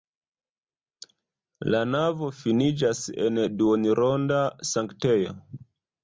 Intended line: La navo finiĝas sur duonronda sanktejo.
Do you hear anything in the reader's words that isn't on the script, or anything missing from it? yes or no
yes